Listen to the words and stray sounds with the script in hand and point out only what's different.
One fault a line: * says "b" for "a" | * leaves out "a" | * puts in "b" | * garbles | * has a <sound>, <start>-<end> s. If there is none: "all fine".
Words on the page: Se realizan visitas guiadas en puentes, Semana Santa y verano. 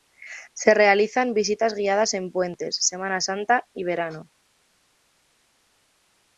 all fine